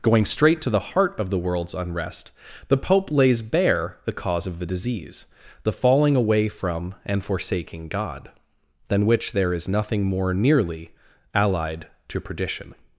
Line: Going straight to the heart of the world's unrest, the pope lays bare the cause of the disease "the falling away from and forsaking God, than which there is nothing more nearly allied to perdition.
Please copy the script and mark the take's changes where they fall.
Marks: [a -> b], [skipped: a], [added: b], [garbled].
Going straight to the heart of the world's unrest, the pope lays bare the cause of the disease "the falling away from and forsaking God, than which there is nothing more nearly allied to perdition.